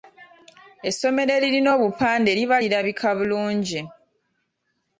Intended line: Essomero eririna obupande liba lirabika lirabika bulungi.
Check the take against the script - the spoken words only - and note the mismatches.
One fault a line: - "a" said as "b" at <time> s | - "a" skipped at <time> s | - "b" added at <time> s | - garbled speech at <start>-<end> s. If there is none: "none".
- "lirabika" skipped at 3.1 s